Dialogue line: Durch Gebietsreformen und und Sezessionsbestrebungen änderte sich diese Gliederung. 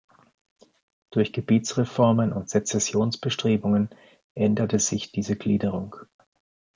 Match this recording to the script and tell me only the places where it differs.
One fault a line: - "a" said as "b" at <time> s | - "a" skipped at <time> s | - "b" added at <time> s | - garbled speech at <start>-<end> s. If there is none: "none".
- "und" skipped at 2.5 s